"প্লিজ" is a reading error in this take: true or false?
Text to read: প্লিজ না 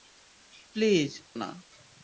false